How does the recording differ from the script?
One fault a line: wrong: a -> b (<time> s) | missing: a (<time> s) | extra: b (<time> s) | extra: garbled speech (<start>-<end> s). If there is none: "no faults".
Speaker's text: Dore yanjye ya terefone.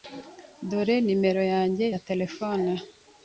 extra: nimero (1.1 s)